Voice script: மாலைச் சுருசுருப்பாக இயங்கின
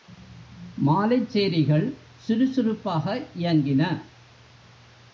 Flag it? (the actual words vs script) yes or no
yes